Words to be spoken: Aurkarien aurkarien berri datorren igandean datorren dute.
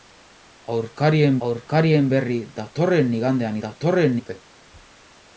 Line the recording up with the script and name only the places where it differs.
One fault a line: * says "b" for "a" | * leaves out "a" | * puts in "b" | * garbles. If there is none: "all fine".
all fine